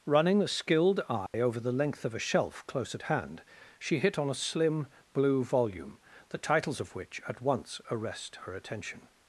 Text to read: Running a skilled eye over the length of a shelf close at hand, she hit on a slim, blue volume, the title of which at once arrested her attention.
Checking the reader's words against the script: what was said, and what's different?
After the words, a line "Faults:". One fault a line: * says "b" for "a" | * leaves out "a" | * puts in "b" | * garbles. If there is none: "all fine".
Running a skilled eye over the length of a shelf close at hand, she hit on a slim, blue volume, the titles of which at once arrest her attention.
Faults:
* says "titles" for "title"
* says "arrest" for "arrested"